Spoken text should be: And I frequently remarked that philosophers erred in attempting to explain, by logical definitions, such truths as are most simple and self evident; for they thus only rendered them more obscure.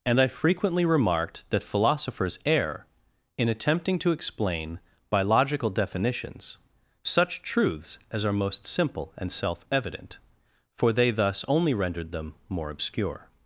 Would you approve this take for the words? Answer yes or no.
no